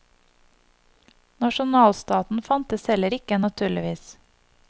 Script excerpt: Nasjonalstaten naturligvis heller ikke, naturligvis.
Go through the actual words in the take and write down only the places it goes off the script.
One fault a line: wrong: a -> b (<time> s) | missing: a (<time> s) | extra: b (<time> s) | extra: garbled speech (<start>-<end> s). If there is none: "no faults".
wrong: naturligvis -> fantes (2.4 s)